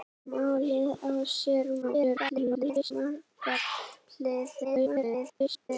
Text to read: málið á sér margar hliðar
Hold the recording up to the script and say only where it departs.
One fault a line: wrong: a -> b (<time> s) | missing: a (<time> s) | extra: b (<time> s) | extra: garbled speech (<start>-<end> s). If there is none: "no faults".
extra: garbled speech (1.8-2.9 s)
extra: garbled speech (4.6-5.7 s)